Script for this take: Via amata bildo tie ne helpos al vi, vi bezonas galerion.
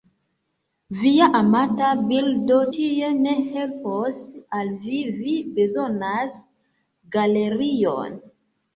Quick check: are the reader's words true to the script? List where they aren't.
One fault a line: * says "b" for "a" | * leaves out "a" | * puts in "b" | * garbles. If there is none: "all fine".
all fine